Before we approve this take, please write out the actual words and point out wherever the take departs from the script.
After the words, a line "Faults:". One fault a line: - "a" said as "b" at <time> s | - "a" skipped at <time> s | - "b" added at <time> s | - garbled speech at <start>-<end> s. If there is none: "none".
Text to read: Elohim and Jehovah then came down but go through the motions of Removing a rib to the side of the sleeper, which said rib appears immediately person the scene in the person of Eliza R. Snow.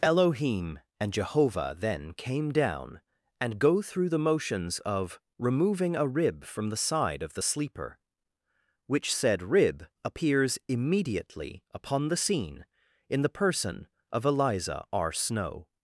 Elohim and Jehovah then came down and go through the motions of Removing a rib from the side of the sleeper, which said rib appears immediately upon the scene in the person of Eliza R. Snow.
Faults:
- "but" said as "and" at 3.4 s
- "to" said as "from" at 6.4 s
- "person" said as "upon" at 11.7 s